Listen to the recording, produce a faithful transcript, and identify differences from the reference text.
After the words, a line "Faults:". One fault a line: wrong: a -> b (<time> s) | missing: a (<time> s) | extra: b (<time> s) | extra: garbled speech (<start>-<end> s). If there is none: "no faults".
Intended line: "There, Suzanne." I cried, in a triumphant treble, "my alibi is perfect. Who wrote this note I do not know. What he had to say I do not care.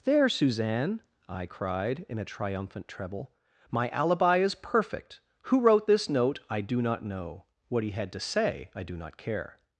"There, Suzanne." I cried, in a triumphant treble, "my alibi is perfect. Who wrote this note I do not know. What he had to say I do not care.
Faults:
no faults